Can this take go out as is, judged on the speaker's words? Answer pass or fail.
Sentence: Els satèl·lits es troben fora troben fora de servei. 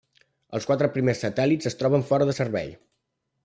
fail